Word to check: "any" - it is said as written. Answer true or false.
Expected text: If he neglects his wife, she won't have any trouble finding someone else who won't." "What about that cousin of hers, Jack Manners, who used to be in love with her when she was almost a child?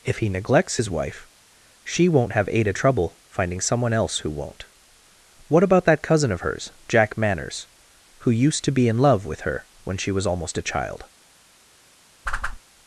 false